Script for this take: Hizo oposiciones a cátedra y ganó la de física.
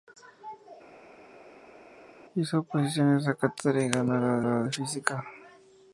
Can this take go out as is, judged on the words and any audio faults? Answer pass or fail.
fail